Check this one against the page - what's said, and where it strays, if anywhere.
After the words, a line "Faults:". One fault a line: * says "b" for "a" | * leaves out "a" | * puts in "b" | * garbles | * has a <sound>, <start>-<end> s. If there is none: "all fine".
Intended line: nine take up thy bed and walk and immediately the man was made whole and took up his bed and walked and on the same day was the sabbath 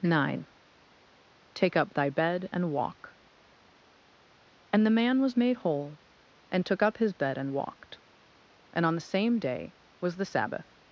nine take up thy bed and walk and the man was made whole and took up his bed and walked and on the same day was the sabbath
Faults:
* leaves out "immediately"